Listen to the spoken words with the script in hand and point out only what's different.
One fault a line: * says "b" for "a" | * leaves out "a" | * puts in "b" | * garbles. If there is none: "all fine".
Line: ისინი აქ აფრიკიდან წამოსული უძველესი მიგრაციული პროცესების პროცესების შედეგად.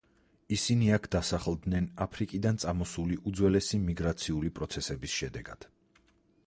* puts in "დასახლდნენ"
* leaves out "პროცესების"